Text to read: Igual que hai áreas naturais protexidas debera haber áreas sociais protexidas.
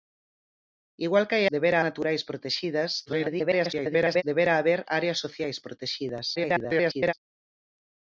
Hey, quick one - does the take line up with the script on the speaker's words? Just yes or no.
no